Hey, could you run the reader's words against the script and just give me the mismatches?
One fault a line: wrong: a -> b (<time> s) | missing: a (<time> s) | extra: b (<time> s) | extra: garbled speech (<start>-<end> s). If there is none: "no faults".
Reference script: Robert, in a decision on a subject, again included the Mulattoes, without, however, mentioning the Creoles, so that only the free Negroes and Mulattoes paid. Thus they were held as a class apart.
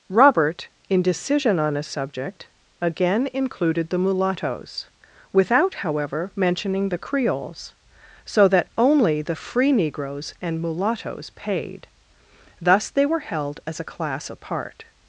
missing: a (1.0 s)